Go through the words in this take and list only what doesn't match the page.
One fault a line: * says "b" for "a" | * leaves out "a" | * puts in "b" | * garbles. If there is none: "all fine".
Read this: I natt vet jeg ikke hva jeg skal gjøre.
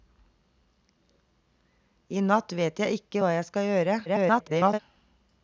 * garbles